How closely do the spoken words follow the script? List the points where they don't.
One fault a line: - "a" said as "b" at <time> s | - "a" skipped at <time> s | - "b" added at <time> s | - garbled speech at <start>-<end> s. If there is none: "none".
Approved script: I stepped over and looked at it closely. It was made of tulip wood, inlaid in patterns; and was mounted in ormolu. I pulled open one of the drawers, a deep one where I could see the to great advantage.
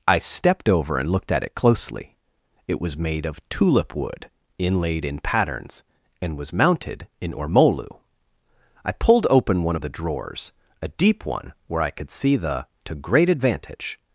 none